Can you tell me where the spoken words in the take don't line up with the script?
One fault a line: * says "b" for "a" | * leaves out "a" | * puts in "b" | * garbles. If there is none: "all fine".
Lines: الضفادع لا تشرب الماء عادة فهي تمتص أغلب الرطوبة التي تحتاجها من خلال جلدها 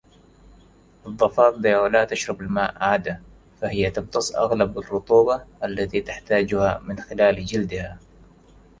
all fine